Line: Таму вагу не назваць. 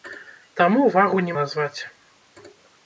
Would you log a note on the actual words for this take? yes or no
no